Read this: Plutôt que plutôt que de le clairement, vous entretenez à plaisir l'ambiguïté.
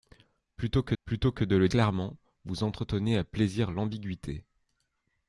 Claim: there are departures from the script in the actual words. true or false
false